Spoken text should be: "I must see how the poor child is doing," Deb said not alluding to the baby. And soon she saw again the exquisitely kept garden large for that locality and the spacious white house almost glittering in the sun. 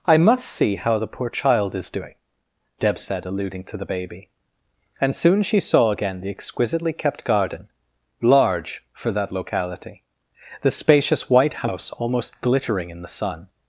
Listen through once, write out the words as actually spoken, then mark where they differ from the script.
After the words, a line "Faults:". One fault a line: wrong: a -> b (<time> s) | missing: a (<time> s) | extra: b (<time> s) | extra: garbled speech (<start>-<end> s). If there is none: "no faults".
"I must see how the poor child is doing," Deb said alluding to the baby. And soon she saw again the exquisitely kept garden large for that locality the spacious white house almost glittering in the sun.
Faults:
missing: not (3.2 s)
missing: and (10.0 s)